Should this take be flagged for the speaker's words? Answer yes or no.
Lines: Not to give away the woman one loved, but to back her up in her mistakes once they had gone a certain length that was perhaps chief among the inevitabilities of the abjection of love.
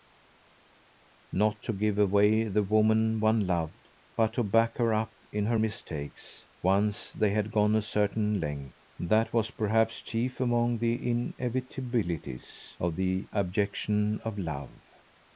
no